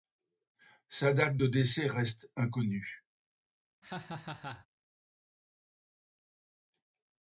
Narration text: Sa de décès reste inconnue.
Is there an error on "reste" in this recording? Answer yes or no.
no